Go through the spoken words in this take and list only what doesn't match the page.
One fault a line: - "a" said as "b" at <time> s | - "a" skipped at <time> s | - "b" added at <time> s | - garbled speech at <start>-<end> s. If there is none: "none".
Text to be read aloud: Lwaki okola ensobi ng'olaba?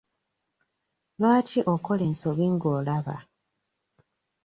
none